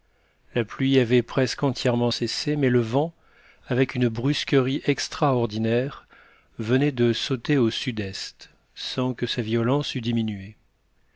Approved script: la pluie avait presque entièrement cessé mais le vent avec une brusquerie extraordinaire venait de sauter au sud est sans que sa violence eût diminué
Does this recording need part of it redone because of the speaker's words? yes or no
no